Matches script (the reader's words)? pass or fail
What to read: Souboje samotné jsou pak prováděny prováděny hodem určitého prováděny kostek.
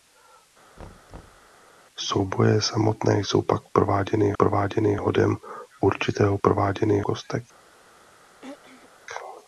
pass